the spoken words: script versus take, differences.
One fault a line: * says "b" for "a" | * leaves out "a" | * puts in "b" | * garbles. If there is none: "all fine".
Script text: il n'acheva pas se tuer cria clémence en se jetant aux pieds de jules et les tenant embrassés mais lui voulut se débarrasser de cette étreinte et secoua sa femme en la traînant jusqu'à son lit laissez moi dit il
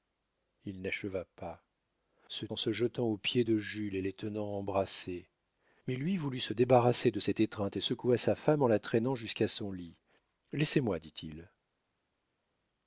* leaves out "tuer cria clémence"